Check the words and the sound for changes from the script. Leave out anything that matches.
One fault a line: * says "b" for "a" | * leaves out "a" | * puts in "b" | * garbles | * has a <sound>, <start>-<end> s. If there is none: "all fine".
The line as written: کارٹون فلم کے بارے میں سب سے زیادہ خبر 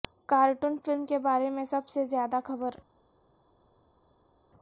all fine